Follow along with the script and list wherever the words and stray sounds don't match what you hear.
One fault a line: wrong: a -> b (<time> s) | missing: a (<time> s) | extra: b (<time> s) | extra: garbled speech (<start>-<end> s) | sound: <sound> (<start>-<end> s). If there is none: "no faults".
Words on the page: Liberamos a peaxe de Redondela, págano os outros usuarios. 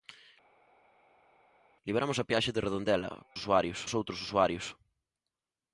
wrong: págano -> usuarios (3.4 s)